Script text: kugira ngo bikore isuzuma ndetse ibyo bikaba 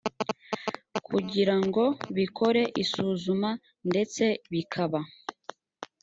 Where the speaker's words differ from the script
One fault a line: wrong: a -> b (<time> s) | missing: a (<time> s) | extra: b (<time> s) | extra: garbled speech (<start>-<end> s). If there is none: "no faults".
missing: ibyo (4.2 s)